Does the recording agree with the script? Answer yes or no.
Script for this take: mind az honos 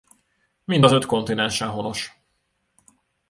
no